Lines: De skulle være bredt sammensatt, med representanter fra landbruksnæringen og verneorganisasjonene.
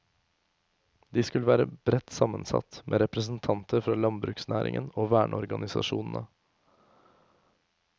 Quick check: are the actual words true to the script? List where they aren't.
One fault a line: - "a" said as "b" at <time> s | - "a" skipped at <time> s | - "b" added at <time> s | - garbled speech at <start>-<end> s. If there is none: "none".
none